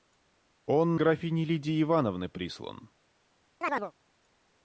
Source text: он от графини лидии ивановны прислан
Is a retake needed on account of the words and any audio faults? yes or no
yes